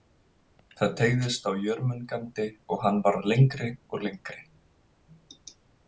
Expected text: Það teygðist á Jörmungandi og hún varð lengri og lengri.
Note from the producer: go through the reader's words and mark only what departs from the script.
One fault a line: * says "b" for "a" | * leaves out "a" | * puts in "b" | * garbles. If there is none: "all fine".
* says "hann" for "hún"